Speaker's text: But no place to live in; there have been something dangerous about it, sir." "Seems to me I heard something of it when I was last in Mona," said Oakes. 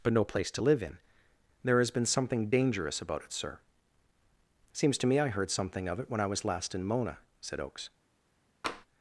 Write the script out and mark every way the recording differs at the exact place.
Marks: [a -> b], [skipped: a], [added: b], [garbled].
But no place to live in; there [have -> has] been something dangerous about it, sir." "Seems to me I heard something of it when I was last in Mona," said Oakes.